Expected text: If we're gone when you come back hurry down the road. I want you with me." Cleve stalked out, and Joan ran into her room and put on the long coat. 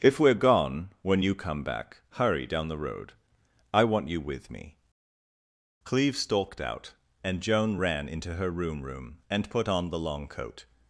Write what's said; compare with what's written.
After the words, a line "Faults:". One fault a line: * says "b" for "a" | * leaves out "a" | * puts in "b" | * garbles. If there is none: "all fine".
If we're gone when you come back hurry down the road. I want you with me." Cleve stalked out, and Joan ran into her room room and put on the long coat.
Faults:
* puts in "room"